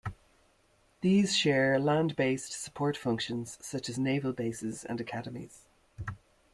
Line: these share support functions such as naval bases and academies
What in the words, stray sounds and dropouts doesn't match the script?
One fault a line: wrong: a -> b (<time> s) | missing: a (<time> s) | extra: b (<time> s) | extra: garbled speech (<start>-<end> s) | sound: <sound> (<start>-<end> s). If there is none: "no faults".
extra: land based (1.8 s)